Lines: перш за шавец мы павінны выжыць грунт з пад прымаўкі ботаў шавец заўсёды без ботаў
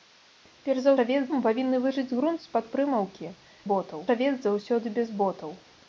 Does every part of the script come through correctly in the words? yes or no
yes